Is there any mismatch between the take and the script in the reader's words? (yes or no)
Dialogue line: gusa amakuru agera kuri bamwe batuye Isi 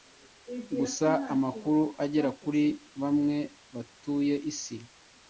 no